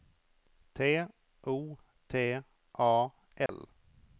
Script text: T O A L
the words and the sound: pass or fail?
fail